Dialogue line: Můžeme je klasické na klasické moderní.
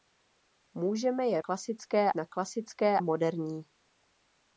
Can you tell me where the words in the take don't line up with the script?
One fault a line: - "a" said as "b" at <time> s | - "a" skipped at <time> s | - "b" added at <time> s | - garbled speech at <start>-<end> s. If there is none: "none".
none